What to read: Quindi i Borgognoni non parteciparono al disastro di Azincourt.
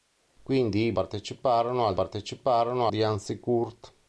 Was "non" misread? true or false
true